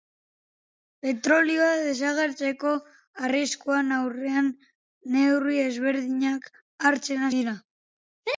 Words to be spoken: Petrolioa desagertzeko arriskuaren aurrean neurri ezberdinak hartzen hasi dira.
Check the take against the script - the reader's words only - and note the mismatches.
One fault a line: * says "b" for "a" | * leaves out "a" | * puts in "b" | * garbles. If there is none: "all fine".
* leaves out "hasi"